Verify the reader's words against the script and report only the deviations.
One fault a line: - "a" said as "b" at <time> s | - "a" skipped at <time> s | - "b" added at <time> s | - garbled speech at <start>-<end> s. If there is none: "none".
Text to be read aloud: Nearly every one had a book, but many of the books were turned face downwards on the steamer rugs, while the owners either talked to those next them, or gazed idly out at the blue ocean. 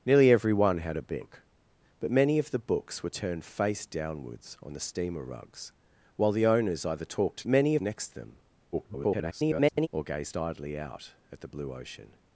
- "those" said as "many" at 7.5 s
- garbled speech at 8.7-9.9 s